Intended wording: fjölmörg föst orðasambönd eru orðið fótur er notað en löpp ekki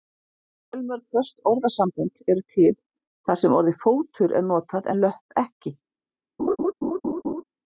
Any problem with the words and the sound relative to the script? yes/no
yes